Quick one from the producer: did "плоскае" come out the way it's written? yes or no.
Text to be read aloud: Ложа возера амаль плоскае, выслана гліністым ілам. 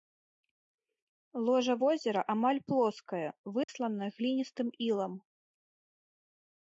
yes